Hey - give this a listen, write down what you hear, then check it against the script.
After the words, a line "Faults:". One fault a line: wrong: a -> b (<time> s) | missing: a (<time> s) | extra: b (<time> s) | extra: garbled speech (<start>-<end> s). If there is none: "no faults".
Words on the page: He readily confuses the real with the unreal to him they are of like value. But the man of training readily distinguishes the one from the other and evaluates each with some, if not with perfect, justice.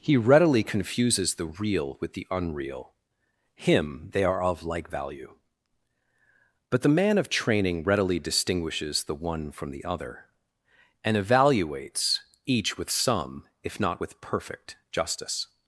He readily confuses the real with the unreal him they are of like value. But the man of training readily distinguishes the one from the other and evaluates each with some, if not with perfect, justice.
Faults:
missing: to (2.9 s)